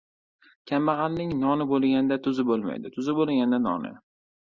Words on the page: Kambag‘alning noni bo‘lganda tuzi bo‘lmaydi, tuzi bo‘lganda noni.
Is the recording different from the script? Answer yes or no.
no